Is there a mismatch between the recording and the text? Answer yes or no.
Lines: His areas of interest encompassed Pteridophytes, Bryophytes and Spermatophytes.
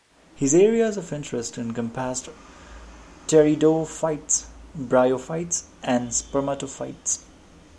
no